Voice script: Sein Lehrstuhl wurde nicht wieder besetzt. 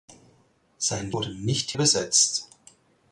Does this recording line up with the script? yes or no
no